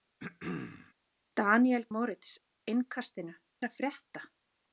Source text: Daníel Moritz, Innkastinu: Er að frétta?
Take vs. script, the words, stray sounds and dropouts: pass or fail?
fail